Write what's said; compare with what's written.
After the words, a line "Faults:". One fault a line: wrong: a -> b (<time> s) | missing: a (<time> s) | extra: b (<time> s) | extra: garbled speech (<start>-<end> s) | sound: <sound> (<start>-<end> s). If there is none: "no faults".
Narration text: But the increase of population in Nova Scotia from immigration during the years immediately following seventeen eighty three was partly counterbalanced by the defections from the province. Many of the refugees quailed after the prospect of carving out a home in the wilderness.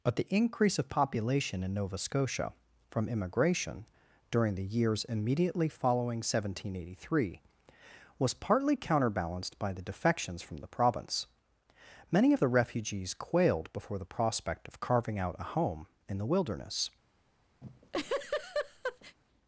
But the increase of population in Nova Scotia from immigration during the years immediately following seventeen eighty three was partly counterbalanced by the defections from the province. Many of the refugees quailed before the prospect of carving out a home in the wilderness.
Faults:
wrong: after -> before (13.7 s)
sound: laugh (17.6-19.2 s)